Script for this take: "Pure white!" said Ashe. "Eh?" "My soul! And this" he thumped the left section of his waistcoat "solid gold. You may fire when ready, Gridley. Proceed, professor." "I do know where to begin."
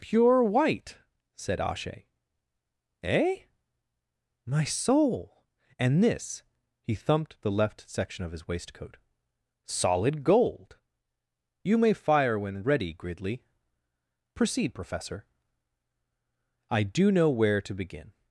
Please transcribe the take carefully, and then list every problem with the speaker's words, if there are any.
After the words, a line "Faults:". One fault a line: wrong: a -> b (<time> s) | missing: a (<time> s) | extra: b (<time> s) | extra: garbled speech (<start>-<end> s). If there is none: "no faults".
"Pure white!" said Ashe. "Eh?" "My soul! And this" he thumped the left section of his waistcoat "solid gold. You may fire when ready, Gridley. Proceed, professor." "I do know where to begin."
Faults:
no faults